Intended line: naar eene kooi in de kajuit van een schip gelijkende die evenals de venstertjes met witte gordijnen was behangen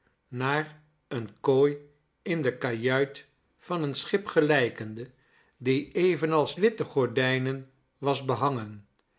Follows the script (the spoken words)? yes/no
no